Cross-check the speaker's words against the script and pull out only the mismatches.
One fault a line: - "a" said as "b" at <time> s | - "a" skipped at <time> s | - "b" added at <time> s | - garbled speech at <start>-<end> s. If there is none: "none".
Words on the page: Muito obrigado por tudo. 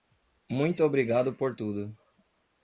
none